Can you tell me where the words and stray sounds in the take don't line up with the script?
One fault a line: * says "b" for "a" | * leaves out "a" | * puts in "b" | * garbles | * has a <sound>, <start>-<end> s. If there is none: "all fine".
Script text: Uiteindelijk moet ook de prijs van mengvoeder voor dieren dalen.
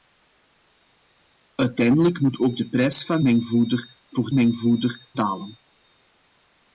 * says "mengvoeder" for "dieren"